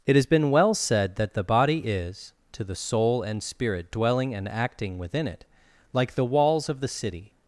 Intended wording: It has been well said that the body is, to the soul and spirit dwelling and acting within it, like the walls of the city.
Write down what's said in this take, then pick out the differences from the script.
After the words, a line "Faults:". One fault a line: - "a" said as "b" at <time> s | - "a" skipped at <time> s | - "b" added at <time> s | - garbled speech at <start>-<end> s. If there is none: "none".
It has been well said that the body is, to the soul and spirit dwelling and acting within it, like the walls of the city.
Faults:
none